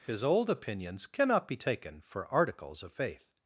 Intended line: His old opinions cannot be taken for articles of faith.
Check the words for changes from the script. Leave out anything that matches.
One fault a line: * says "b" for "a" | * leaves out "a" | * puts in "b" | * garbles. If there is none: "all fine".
all fine